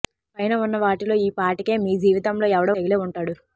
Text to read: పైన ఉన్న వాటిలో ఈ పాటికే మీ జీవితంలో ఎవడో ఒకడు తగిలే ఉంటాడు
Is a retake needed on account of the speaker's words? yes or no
yes